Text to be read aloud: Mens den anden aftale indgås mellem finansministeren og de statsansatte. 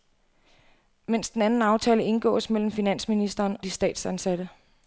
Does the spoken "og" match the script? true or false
false